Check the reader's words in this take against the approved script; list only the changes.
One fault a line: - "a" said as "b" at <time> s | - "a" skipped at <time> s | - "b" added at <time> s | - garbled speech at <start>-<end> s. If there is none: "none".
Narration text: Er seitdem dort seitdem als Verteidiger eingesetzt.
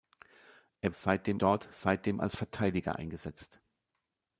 none